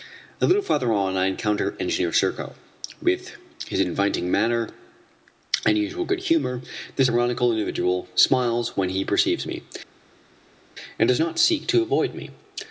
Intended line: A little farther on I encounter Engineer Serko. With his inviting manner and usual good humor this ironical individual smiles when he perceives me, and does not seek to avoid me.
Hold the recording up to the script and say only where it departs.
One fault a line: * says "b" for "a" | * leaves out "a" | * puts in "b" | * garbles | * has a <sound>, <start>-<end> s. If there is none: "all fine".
all fine